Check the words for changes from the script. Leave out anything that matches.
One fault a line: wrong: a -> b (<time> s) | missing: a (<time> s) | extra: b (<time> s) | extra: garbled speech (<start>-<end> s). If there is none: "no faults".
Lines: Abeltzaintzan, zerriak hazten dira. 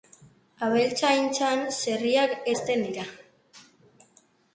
no faults